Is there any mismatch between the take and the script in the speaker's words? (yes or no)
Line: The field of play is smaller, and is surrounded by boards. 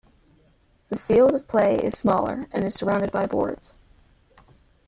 no